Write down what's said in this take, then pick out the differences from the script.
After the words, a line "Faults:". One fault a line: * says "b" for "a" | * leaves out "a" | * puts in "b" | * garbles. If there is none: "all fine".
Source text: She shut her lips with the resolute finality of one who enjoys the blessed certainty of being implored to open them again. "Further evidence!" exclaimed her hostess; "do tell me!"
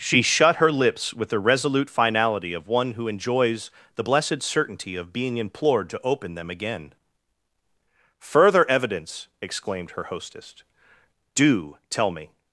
She shut her lips with the resolute finality of one who enjoys the blessed certainty of being implored to open them again. "Further evidence!" exclaimed her hostess; "do tell me!"
Faults:
all fine